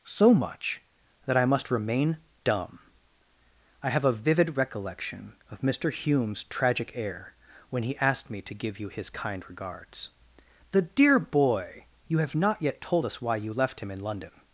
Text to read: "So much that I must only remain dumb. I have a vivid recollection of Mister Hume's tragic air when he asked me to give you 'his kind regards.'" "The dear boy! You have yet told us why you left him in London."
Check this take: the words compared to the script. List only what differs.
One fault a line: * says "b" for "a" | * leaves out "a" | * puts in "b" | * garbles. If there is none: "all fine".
* leaves out "only"
* puts in "not"